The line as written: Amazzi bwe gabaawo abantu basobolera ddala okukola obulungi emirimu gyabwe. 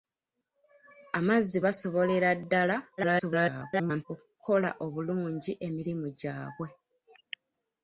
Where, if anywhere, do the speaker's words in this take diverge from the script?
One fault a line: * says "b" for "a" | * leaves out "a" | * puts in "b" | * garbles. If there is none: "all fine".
* leaves out "bwe gabaawo abantu"
* garbles